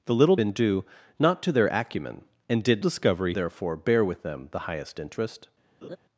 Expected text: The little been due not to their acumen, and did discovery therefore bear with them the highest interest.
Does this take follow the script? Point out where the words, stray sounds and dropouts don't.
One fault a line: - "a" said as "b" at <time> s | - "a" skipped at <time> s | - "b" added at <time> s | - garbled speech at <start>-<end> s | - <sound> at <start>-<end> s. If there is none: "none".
- laugh at 5.8-6.0 s